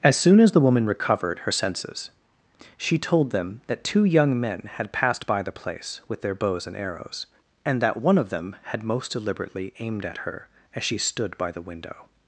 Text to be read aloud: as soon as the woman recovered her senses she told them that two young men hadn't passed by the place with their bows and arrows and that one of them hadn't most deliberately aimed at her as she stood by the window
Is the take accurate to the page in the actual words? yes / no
no